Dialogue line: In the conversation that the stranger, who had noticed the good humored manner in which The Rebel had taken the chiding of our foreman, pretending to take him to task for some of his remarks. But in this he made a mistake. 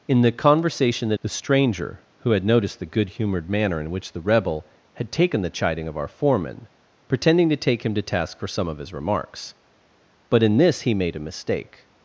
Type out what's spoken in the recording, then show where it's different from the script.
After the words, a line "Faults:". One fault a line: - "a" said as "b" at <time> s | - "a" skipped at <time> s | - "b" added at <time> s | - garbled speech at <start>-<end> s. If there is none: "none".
In the conversation that the stranger, who had noticed the good humored manner in which The Rebel had taken the chiding of our foreman, pretending to take him to task for some of his remarks. But in this he made a mistake.
Faults:
none